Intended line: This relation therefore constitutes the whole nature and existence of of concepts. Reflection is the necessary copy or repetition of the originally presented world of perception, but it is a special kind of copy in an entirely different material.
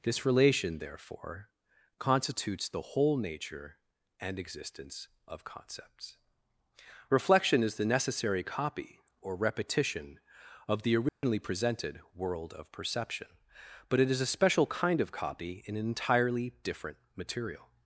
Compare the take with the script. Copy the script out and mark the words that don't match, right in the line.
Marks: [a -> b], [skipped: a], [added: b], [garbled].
This relation therefore constitutes the whole nature and existence of [skipped: of] concepts. Reflection is the necessary copy or repetition of the originally presented world of perception, but it is a special kind of copy in an entirely different material.